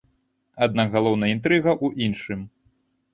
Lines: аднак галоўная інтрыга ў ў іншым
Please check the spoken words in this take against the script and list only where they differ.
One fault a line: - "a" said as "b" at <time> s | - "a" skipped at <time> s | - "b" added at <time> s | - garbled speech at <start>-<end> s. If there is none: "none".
- "ў" skipped at 2.1 s